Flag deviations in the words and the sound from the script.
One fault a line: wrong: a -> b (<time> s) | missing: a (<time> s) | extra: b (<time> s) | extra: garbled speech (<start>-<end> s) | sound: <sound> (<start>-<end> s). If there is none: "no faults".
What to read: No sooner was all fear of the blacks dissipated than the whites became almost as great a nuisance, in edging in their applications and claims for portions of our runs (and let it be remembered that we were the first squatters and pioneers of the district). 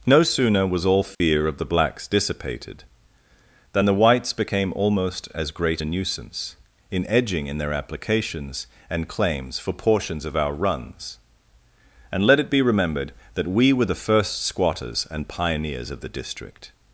sound: dropout (1.1-1.2 s)